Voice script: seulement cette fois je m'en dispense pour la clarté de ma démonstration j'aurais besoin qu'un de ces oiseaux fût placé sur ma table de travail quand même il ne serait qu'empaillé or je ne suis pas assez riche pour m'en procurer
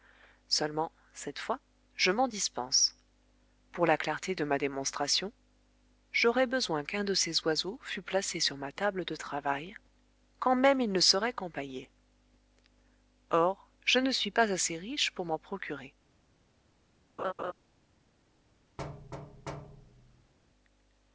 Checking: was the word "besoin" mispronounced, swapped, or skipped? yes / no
no